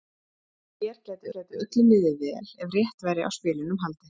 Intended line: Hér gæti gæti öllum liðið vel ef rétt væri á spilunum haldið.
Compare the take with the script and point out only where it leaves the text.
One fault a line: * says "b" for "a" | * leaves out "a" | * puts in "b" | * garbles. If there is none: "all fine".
all fine